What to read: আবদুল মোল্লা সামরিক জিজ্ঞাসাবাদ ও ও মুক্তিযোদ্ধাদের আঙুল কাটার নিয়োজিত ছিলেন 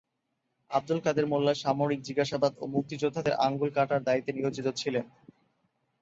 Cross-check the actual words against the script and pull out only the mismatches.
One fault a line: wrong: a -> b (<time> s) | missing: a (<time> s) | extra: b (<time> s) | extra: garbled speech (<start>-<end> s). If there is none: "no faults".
extra: কাদের (1.0 s)
missing: ও (2.7 s)
extra: দায়িত্বে (4.0 s)